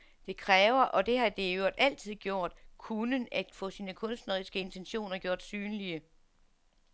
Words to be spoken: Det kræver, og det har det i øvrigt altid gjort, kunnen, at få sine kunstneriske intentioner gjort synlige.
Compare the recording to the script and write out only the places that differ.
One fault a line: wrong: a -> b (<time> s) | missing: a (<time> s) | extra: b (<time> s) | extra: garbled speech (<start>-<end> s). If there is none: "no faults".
no faults